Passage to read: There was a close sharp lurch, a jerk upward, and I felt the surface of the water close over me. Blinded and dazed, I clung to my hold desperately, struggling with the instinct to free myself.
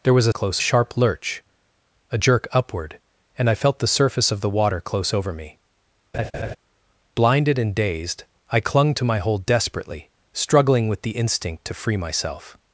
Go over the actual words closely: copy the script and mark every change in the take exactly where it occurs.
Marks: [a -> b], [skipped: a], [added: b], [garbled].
There was a close sharp lurch, a jerk upward, and I felt the surface of the water close over me. Blinded and dazed, I clung to my hold desperately, struggling with the instinct to free myself.